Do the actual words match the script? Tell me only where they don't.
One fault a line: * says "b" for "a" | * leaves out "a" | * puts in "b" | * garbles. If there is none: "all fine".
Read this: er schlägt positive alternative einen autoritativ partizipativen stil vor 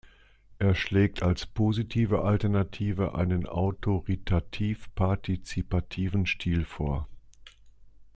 * puts in "als"